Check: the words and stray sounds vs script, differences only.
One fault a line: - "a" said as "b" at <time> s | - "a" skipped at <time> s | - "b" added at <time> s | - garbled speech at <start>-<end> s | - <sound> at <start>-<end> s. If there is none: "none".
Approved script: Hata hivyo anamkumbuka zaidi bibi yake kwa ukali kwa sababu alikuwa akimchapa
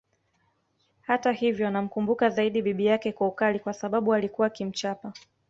none